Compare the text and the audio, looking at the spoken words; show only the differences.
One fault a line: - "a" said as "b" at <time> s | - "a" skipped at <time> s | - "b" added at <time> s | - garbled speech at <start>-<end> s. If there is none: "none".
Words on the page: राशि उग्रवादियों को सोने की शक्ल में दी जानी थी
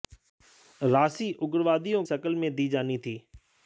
- "को सोने की" skipped at 2.0 s